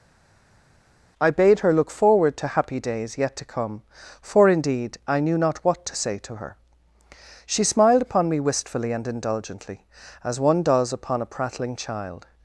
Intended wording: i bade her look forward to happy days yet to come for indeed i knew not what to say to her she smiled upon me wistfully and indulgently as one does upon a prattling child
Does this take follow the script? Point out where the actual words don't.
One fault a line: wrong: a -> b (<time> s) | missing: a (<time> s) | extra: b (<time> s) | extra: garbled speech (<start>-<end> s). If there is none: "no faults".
no faults